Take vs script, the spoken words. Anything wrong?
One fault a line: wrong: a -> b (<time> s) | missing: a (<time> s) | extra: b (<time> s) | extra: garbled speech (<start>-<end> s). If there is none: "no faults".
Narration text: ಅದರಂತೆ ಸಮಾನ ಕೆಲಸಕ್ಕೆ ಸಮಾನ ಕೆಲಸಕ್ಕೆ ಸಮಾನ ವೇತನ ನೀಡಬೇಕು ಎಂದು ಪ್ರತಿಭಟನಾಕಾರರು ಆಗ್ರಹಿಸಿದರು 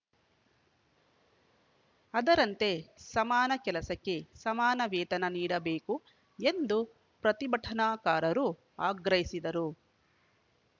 missing: ಕೆಲಸಕ್ಕೆ ಸಮಾನ (4.8 s)